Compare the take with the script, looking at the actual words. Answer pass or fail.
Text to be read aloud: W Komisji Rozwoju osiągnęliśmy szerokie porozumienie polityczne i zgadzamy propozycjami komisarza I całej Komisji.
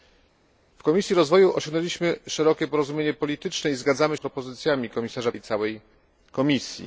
pass